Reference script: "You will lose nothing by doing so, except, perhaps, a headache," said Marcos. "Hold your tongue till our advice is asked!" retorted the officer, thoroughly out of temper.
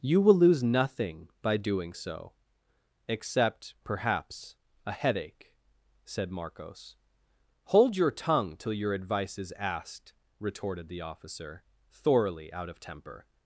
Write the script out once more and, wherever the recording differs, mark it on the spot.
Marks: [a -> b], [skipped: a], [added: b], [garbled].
"You will lose nothing by doing so, except, perhaps, a headache," said Marcos. "Hold your tongue till [our -> your] advice is asked!" retorted the officer, thoroughly out of temper.